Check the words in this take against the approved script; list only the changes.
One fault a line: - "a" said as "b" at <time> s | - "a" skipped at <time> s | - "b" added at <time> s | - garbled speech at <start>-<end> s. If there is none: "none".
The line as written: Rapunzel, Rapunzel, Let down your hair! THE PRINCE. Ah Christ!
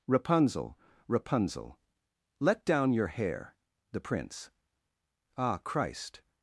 none